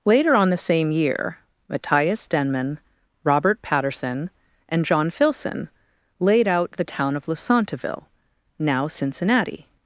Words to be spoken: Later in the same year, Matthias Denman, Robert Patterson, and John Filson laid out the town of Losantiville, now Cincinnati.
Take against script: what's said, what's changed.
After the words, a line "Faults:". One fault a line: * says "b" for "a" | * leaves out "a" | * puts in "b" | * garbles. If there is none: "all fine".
Later on the same year, Matthias Denman, Robert Patterson, and John Filson laid out the town of Losantiville, now Cincinnati.
Faults:
* says "on" for "in"